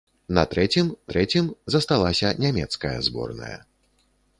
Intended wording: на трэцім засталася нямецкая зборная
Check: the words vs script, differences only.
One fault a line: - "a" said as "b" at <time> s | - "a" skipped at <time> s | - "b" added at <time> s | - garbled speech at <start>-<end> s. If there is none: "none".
- "трэцім" added at 1.1 s